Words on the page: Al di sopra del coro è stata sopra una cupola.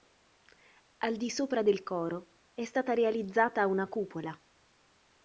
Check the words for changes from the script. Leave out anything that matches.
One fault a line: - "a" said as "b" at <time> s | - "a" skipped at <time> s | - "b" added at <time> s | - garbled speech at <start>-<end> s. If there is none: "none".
- "sopra" said as "realizzata" at 2.9 s